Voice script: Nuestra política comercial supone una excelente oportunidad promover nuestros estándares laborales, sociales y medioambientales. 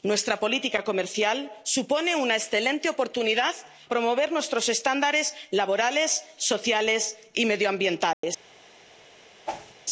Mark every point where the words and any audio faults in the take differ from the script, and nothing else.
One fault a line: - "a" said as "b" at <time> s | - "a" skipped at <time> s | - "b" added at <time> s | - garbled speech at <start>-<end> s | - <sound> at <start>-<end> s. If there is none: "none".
- dropout at 8.1-8.2 s
- whoosh at 9.5-9.7 s